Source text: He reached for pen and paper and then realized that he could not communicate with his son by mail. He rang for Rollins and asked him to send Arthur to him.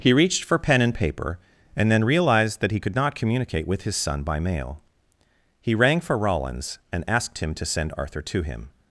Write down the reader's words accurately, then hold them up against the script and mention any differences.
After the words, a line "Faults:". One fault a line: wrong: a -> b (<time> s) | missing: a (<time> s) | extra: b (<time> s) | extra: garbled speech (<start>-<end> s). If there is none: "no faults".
He reached for pen and paper and then realized that he could not communicate with his son by mail. He rang for Rollins and asked him to send Arthur to him.
Faults:
no faults